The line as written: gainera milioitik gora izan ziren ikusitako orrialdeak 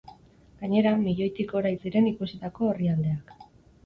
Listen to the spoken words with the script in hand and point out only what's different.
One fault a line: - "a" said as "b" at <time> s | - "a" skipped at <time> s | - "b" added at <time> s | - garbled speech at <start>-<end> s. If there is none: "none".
- "izan" skipped at 1.7 s